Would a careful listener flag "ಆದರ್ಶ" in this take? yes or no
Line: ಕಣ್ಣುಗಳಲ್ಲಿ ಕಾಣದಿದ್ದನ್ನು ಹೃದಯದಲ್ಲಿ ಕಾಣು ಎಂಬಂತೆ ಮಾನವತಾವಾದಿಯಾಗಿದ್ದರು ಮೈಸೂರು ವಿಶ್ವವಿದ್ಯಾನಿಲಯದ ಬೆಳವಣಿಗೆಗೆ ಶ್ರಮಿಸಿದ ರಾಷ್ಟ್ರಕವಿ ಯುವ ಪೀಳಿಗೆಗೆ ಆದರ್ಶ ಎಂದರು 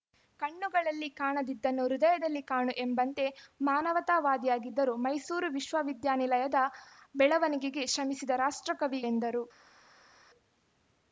yes